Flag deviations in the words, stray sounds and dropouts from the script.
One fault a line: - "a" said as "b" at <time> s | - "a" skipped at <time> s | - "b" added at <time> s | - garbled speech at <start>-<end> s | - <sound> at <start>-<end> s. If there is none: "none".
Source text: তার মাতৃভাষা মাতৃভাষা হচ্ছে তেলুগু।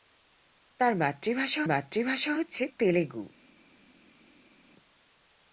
none